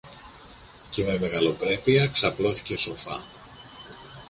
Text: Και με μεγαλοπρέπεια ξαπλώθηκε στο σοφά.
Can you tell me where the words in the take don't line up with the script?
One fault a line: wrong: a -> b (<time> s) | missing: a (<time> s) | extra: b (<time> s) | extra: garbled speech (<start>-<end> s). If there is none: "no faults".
missing: στο (2.8 s)